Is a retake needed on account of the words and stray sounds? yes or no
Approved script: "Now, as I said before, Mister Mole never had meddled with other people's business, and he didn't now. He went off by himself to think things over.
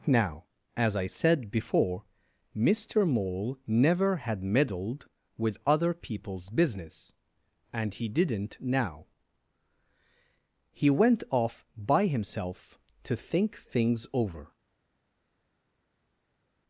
no